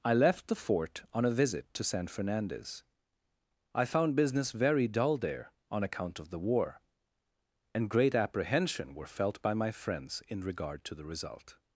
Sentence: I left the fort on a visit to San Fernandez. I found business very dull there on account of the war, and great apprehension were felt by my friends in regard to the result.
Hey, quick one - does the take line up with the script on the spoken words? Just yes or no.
yes